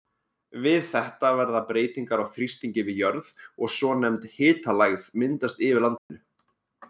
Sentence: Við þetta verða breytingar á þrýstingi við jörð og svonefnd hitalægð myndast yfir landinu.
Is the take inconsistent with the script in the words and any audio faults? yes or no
yes